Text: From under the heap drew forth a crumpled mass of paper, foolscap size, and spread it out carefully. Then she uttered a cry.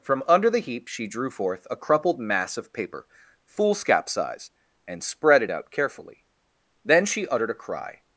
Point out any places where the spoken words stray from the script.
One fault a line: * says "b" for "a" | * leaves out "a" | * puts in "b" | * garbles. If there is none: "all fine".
* puts in "she"